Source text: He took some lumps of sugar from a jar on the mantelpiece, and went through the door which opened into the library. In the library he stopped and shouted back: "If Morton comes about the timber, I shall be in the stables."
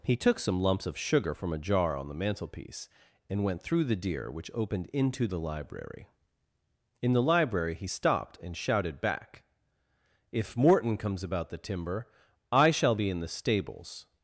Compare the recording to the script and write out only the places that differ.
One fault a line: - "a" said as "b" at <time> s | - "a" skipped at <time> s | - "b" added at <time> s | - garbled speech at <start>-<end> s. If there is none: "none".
- "door" said as "deer" at 4.0 s